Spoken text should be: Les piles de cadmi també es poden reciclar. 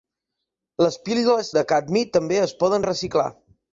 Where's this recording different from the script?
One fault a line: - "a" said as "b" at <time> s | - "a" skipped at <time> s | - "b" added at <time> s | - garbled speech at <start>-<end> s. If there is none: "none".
none